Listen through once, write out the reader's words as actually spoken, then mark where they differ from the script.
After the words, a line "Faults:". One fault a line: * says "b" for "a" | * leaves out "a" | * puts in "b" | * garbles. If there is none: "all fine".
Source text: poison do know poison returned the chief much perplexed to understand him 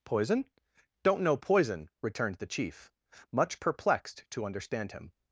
poison don't know poison returned the chief much perplexed to understand him
Faults:
* says "don't" for "do"